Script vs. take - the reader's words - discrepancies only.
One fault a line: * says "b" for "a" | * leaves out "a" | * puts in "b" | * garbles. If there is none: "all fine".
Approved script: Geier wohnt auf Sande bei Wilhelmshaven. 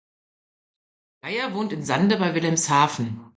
* says "in" for "auf"